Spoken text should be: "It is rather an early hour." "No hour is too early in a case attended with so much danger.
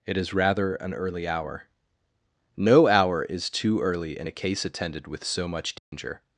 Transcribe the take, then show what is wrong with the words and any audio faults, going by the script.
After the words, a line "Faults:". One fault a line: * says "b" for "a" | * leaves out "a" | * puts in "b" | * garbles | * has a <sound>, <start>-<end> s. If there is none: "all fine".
"It is rather an early hour." "No hour is too early in a case attended with so much danger.
Faults:
* has a dropout, 5.8-5.9 s